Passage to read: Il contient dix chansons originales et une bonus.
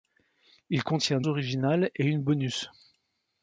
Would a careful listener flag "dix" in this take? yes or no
yes